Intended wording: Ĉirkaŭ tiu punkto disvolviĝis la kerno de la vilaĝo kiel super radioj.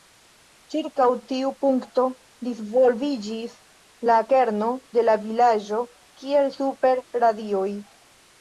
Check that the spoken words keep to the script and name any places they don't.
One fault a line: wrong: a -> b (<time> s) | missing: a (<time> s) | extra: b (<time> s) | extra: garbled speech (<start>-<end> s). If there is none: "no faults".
no faults